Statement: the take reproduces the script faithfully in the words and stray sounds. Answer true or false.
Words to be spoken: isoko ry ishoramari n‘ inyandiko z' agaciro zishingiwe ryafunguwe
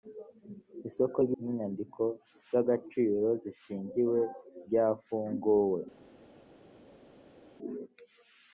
false